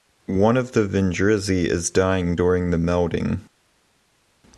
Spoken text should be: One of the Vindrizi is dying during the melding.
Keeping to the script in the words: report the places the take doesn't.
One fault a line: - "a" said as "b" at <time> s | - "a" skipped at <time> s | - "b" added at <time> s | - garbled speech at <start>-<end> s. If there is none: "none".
none